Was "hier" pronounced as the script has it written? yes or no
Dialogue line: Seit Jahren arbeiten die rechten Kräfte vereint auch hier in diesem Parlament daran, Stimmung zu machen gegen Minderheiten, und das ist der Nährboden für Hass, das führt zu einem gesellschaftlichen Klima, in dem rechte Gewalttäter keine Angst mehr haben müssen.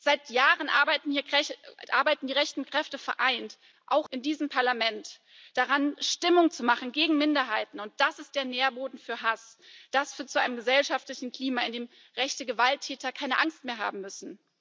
no